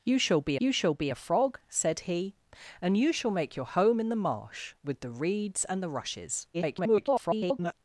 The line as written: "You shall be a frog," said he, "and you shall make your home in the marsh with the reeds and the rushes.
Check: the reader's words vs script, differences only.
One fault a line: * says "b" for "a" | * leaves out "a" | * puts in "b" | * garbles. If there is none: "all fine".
* puts in "you shall be"
* garbles